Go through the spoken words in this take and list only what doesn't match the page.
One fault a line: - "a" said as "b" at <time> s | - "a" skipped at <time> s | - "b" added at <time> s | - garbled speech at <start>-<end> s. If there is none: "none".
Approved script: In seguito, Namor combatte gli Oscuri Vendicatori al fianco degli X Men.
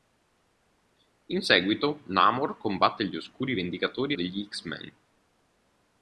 - "al fianco" skipped at 4.2 s